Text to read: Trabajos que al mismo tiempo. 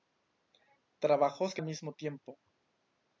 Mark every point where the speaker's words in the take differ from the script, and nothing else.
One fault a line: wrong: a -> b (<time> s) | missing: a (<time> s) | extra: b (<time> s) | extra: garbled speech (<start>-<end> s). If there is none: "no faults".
no faults